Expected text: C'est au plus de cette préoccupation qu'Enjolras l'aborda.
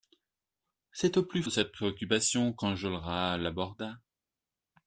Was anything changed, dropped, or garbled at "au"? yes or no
no